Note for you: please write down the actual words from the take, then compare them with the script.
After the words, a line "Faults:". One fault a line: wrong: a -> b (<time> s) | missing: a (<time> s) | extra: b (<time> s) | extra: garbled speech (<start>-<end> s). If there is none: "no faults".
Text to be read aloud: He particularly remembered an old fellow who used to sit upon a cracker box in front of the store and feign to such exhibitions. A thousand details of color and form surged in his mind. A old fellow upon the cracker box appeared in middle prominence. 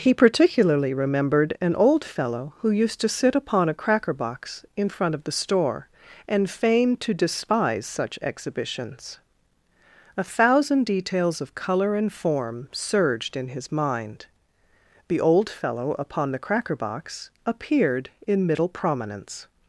He particularly remembered an old fellow who used to sit upon a cracker box in front of the store and feign to despise such exhibitions. A thousand details of color and form surged in his mind. The old fellow upon the cracker box appeared in middle prominence.
Faults:
extra: despise (7.1 s)
wrong: A -> The (15.1 s)